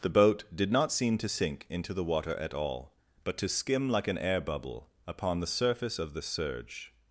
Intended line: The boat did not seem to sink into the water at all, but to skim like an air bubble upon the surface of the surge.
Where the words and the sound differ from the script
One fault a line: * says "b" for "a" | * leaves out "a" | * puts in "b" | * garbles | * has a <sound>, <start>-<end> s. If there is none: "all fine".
all fine